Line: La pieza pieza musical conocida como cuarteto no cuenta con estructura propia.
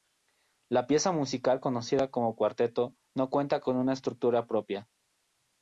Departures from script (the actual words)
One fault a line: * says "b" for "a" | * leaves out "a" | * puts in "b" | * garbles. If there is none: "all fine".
* leaves out "pieza"
* puts in "una"